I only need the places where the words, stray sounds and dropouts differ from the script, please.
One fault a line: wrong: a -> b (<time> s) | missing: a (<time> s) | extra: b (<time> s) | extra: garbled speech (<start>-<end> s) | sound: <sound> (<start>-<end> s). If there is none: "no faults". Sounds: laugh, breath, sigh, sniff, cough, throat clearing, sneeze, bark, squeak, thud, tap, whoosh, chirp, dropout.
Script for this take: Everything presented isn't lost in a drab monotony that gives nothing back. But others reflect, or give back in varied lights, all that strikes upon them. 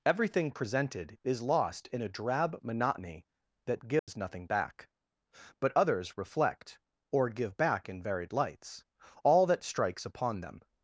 wrong: isn't -> is (1.2 s)
sound: dropout (4.0-4.1 s)